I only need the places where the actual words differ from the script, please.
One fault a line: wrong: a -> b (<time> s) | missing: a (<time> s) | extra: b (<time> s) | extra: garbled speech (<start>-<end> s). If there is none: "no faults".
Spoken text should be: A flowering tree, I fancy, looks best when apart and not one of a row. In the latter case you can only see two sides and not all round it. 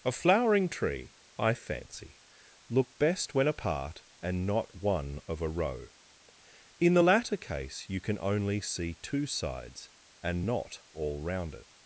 wrong: looks -> look (2.7 s)